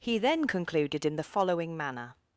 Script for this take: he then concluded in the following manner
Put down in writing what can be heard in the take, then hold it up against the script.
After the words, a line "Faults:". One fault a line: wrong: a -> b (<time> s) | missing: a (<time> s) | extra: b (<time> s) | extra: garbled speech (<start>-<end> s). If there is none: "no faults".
he then concluded in the following manner
Faults:
no faults